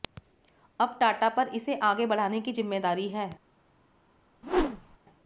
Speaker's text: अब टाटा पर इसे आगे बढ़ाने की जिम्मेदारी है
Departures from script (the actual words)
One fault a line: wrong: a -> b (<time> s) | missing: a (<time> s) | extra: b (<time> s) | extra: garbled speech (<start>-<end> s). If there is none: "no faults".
no faults